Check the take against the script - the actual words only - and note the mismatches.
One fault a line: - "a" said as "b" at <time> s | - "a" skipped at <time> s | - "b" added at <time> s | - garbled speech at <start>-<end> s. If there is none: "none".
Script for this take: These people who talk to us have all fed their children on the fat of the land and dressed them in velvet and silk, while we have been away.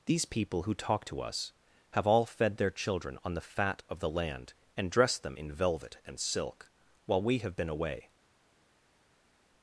none